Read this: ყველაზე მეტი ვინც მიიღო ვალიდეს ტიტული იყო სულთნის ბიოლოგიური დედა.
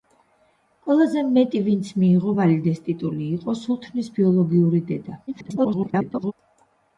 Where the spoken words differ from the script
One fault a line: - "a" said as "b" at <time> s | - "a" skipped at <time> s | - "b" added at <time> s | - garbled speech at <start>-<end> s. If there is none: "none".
- garbled speech at 5.3-6.3 s